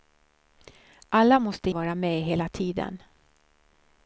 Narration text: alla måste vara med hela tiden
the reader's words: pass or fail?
pass